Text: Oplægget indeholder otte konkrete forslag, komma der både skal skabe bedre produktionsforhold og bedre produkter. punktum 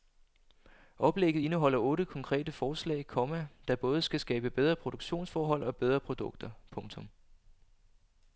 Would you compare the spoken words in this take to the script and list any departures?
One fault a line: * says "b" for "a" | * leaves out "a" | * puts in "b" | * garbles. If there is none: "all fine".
all fine